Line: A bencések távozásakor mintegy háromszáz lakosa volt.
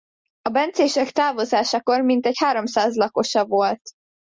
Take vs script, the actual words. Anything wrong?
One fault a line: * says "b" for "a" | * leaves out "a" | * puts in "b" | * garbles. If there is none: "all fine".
all fine